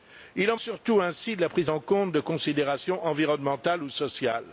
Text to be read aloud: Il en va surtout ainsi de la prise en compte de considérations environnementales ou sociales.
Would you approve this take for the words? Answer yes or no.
no